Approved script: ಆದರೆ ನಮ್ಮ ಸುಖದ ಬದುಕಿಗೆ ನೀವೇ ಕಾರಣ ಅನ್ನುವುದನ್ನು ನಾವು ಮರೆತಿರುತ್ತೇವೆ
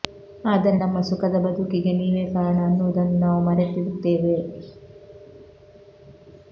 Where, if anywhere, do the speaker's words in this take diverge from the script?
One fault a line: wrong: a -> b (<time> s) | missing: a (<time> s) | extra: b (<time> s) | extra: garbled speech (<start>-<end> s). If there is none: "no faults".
no faults